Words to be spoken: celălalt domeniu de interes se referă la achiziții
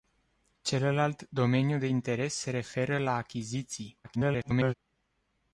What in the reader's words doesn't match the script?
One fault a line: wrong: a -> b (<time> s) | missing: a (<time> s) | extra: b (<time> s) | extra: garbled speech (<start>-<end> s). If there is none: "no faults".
extra: garbled speech (4.0-4.7 s)